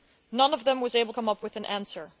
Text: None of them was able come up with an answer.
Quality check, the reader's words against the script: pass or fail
pass